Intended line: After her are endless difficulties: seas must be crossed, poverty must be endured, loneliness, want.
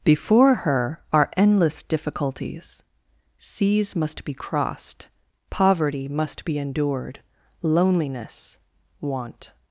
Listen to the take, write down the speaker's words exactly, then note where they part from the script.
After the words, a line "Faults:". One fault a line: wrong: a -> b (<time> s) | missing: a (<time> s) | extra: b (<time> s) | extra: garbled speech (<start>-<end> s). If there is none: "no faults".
Before her are endless difficulties: seas must be crossed, poverty must be endured, loneliness, want.
Faults:
wrong: After -> Before (0.0 s)